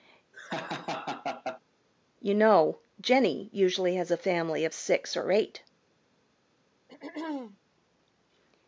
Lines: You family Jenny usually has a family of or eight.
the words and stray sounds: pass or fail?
fail